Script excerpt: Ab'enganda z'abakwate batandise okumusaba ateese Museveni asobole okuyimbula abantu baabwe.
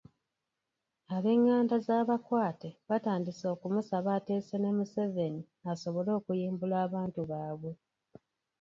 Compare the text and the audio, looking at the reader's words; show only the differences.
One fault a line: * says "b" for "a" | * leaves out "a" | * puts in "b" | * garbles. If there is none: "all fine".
* puts in "ne"